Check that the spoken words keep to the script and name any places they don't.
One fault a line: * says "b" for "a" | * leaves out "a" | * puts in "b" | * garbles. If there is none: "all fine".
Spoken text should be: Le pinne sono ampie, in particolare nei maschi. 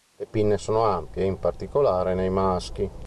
all fine